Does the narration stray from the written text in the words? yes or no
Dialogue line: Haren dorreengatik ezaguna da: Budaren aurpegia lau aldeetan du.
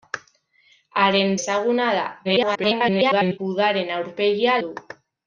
yes